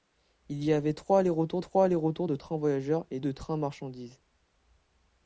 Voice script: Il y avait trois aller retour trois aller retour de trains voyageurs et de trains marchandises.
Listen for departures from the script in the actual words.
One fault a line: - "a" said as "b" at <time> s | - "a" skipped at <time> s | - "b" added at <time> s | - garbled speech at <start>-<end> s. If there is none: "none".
none